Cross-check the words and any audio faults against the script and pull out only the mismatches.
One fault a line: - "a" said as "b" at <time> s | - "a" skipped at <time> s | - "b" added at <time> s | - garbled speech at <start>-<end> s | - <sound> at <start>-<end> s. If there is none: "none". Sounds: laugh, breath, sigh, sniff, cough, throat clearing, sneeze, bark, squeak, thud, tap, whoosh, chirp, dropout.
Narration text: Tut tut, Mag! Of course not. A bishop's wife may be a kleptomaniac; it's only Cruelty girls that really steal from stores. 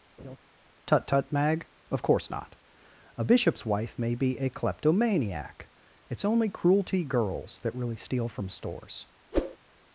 - laugh at 0.2-0.4 s
- whoosh at 9.3-9.6 s